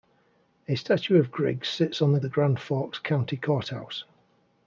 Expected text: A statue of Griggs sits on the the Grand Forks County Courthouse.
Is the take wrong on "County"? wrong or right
right